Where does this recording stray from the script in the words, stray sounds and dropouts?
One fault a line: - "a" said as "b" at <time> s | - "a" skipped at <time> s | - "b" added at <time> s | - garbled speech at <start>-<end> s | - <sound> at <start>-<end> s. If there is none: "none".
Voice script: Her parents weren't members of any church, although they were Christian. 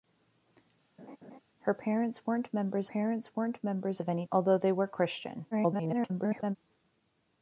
- laugh at 1.0-1.4 s
- "parents weren't members" added at 2.8 s
- "church" skipped at 4.2 s
- garbled speech at 5.5-6.6 s